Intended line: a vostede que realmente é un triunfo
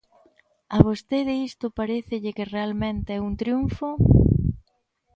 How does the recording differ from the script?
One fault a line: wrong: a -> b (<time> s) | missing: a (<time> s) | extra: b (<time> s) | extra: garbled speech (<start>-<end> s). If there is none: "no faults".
extra: isto parécelle (1.5 s)